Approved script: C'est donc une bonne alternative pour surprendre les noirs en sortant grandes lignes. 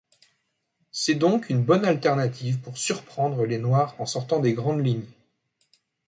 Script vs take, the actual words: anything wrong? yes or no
yes